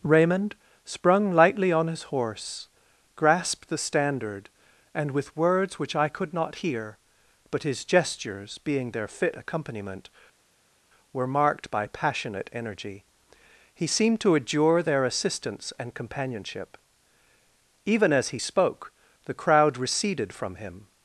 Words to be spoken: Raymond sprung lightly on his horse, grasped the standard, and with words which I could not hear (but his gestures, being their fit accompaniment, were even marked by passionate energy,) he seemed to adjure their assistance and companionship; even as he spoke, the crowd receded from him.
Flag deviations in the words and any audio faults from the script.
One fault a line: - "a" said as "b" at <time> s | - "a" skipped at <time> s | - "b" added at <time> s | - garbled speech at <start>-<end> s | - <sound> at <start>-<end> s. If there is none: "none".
- "even" skipped at 11.3 s